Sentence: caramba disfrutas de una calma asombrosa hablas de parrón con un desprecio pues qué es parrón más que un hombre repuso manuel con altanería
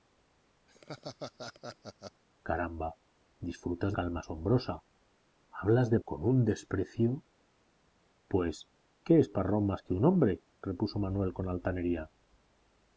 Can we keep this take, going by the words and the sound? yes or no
no